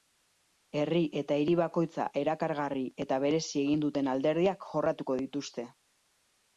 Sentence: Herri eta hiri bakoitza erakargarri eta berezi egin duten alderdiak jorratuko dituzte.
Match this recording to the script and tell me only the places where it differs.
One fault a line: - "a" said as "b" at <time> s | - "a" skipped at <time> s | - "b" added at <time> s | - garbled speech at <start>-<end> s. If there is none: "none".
none